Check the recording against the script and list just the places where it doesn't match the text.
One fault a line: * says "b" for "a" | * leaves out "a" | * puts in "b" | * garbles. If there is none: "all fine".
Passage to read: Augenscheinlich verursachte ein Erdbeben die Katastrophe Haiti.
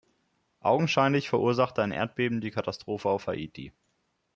* puts in "auf"